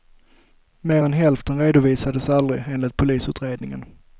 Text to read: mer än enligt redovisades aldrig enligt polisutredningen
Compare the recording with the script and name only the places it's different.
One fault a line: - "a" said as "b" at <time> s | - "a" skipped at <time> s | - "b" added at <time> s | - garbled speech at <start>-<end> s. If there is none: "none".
- "enligt" said as "hälften" at 1.1 s